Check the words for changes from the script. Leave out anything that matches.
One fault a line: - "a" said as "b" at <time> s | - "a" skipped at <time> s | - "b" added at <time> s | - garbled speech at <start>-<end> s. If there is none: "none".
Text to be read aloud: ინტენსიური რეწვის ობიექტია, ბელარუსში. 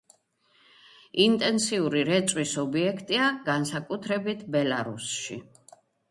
- "განსაკუთრებით" added at 3.5 s